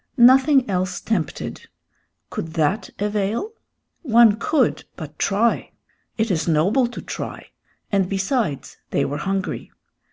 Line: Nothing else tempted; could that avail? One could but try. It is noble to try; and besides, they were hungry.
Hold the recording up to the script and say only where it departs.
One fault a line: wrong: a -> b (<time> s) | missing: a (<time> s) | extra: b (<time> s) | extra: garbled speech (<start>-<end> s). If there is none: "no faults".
no faults